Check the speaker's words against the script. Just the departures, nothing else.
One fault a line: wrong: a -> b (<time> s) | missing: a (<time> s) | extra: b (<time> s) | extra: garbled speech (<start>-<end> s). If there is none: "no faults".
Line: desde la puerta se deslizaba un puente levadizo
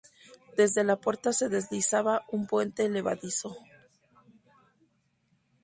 no faults